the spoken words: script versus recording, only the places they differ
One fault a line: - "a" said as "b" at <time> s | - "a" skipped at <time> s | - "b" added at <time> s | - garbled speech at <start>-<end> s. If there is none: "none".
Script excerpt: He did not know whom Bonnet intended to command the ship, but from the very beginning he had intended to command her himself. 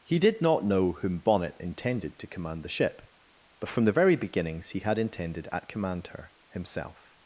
- "beginning" said as "beginnings" at 4.2 s
- "to" said as "at" at 5.5 s